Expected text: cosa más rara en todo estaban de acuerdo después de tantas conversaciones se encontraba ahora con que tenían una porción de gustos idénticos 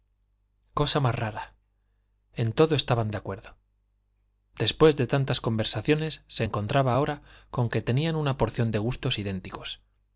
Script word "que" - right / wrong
right